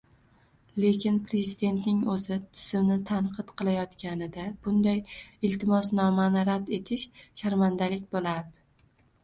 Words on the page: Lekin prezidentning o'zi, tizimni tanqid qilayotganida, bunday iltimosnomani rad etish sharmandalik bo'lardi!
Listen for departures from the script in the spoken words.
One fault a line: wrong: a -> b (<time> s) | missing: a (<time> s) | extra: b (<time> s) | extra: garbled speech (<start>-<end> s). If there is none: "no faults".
no faults